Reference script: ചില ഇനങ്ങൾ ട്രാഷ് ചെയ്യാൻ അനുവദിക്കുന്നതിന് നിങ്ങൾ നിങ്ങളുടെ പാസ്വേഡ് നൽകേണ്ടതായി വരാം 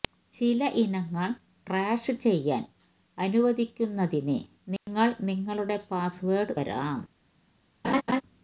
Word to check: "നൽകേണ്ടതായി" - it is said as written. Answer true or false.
false